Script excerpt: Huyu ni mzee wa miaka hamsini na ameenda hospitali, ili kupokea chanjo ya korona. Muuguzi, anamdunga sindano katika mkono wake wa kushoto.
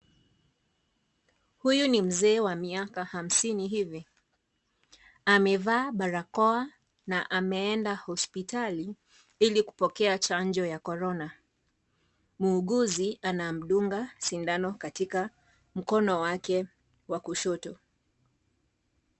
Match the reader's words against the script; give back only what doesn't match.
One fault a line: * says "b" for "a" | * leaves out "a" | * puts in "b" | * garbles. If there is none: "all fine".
* puts in "hivi Amevaa barakoa"